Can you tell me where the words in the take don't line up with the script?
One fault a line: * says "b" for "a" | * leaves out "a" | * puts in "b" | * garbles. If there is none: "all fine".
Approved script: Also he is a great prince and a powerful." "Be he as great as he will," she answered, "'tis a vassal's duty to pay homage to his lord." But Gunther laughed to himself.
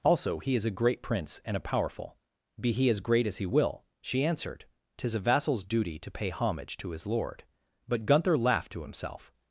all fine